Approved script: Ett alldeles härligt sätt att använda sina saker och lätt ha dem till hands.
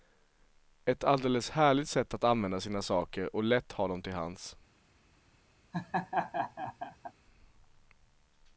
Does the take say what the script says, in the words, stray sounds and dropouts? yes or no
no